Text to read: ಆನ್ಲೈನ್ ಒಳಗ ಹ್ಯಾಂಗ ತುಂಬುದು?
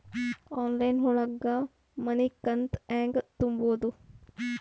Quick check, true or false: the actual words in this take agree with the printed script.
false